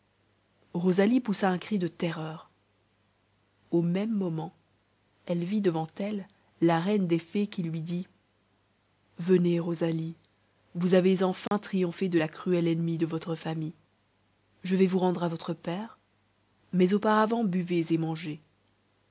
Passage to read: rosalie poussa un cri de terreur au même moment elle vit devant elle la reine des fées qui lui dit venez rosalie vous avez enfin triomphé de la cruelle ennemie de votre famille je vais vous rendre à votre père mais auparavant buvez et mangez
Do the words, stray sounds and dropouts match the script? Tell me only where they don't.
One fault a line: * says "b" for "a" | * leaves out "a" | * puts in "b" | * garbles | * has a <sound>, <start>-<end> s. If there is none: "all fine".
* has a dropout, 11.5-11.5 s